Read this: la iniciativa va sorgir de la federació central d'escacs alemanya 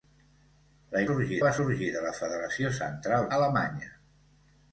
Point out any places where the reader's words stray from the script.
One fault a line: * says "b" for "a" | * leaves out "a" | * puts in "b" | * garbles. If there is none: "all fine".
* says "sorgir" for "iniciativa"
* leaves out "d'escacs"